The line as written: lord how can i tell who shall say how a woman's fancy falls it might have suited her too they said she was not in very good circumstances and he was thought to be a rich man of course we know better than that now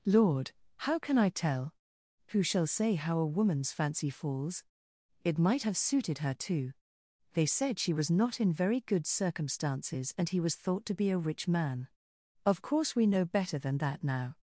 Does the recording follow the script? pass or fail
pass